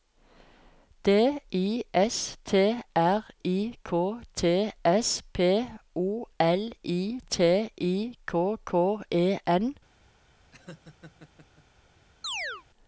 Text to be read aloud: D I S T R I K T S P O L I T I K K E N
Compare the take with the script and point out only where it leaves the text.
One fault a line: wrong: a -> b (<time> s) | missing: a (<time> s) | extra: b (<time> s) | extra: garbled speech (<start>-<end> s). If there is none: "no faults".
no faults